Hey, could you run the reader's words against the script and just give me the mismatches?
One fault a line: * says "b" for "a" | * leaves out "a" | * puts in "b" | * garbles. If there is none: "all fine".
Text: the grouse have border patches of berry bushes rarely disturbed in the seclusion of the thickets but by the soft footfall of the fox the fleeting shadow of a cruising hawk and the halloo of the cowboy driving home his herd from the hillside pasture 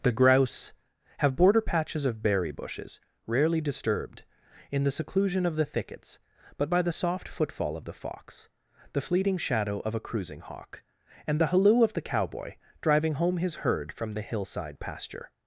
all fine